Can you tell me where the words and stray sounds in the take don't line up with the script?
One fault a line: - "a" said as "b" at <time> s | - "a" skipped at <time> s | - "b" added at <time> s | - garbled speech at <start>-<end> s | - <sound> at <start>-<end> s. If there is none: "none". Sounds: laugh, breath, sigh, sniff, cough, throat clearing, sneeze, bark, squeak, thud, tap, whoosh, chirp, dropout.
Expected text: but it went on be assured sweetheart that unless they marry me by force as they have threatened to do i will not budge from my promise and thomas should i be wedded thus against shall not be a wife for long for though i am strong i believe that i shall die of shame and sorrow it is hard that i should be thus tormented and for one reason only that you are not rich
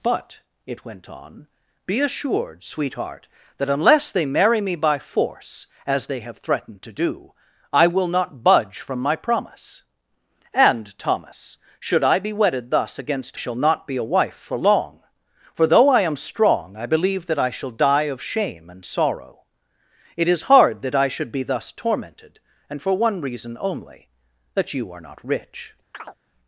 - chirp at 25.9-26.2 s